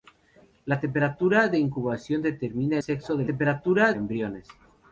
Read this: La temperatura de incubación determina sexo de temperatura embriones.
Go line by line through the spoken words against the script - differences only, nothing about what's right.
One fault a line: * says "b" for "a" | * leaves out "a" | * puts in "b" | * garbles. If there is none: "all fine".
all fine